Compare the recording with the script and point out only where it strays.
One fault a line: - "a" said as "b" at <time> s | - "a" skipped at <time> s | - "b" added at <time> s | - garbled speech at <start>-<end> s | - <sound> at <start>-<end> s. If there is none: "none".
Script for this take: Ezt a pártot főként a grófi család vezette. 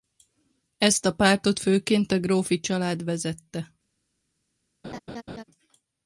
- laugh at 4.8-5.4 s